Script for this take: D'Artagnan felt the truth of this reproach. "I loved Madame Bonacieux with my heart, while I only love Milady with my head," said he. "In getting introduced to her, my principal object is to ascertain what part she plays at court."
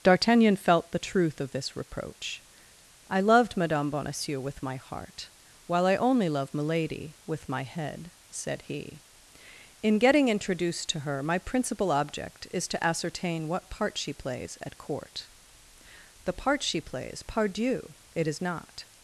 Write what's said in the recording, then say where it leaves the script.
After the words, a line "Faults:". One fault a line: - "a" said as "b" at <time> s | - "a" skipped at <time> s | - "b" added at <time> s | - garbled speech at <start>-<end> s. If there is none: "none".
D'Artagnan felt the truth of this reproach. "I loved Madame Bonacieux with my heart, while I only love Milady with my head," said he. "In getting introduced to her, my principal object is to ascertain what part she plays at court." "The part she plays, pardieu! It is not
Faults:
- "The part she plays pardieu It is not" added at 16.2 s